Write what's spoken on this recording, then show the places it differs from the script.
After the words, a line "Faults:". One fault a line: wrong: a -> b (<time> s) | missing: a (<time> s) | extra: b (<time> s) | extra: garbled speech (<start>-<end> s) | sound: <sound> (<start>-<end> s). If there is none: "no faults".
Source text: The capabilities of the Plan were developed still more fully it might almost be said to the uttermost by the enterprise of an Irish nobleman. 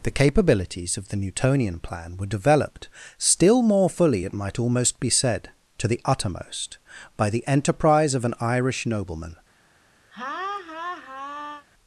The capabilities of the Newtonian plan were developed still more fully it might almost be said to the uttermost by the enterprise of an Irish nobleman.
Faults:
extra: Newtonian (1.2 s)
sound: laugh (10.1-11.7 s)